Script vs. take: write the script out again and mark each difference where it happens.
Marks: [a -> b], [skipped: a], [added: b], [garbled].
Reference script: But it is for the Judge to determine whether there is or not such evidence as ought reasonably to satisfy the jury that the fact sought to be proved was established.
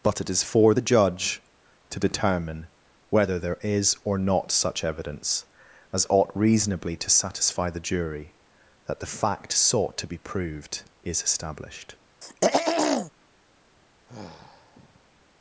But it is for the Judge to determine whether there is or not such evidence as ought reasonably to satisfy the jury that the fact sought to be proved [was -> is] established.